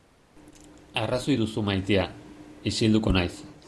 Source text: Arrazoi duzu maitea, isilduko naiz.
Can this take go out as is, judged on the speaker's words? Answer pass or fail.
pass